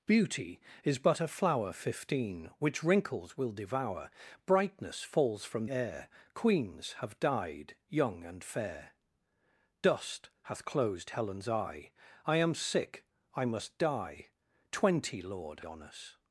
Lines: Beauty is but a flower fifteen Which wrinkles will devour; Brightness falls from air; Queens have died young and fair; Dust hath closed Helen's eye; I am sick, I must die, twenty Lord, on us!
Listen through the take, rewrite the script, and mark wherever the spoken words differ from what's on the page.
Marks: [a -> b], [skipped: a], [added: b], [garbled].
Beauty is but a flower fifteen Which wrinkles will devour; Brightness falls from air; Queens have died young and fair; Dust hath closed Helen's eye; I am sick, I must die, twenty Lord, on us!